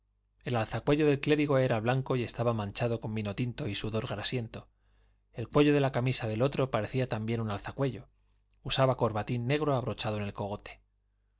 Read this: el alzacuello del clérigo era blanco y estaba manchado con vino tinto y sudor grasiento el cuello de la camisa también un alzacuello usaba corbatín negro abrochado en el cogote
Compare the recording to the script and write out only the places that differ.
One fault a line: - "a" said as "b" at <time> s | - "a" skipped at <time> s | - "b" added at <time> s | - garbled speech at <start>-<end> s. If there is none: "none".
- "del otro parecía" added at 6.3 s